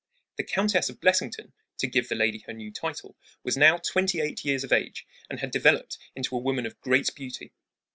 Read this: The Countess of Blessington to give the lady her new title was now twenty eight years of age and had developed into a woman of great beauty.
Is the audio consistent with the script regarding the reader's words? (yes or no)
yes